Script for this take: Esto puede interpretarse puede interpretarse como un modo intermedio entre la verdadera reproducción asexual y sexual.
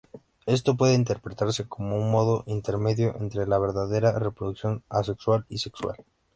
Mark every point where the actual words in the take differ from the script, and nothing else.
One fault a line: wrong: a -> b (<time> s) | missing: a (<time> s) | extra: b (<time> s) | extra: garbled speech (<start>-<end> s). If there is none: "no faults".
missing: puede interpretarse (1.7 s)